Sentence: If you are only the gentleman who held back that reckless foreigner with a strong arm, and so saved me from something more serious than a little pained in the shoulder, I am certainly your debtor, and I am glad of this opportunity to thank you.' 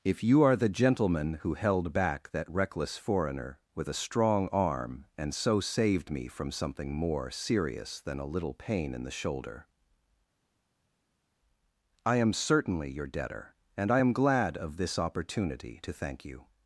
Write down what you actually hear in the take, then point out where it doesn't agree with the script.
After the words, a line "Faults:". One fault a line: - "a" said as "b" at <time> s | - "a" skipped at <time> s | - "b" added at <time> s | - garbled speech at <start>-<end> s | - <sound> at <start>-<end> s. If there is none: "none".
If you are the gentleman who held back that reckless foreigner with a strong arm, and so saved me from something more serious than a little pain in the shoulder, I am certainly your debtor, and I am glad of this opportunity to thank you.'
Faults:
- "only" skipped at 0.6 s
- "pained" said as "pain" at 8.5 s